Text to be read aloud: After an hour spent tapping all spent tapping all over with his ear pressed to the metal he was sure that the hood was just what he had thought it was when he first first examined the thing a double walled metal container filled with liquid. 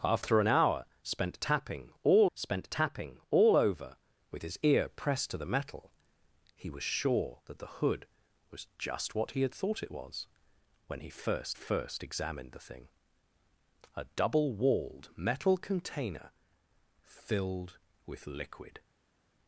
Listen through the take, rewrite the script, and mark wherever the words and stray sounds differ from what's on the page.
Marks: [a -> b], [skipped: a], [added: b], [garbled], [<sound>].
After an hour spent tapping all spent tapping all over with his ear pressed to the metal he was sure that the hood was just what he had thought it was when he first first examined the thing a double walled metal container filled with liquid.